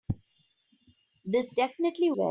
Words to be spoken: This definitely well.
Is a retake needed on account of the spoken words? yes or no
no